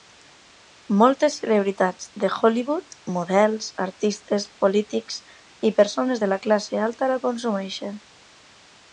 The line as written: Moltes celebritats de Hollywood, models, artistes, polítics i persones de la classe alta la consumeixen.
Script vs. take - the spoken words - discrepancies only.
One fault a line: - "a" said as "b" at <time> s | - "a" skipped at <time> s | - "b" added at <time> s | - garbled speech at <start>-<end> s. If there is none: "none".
none